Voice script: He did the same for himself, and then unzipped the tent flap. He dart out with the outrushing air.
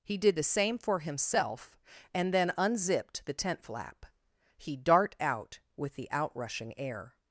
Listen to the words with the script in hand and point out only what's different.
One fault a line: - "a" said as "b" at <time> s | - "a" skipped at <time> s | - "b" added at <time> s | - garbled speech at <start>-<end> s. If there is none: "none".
none